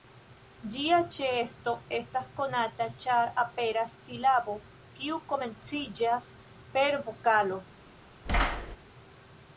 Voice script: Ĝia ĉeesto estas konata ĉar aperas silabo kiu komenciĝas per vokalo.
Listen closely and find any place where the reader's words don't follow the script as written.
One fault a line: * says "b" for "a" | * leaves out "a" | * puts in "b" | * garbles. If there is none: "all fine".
all fine